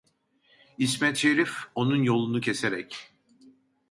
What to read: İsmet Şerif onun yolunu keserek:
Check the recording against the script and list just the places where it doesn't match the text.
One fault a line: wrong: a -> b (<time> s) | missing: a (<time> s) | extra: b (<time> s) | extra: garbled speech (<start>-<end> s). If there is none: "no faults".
no faults